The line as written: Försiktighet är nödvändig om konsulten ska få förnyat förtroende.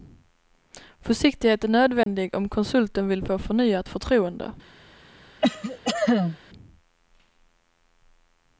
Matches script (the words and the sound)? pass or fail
fail